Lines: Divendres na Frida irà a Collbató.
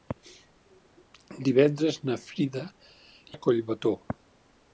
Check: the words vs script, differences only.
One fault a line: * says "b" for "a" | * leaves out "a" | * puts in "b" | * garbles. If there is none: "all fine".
* leaves out "irà"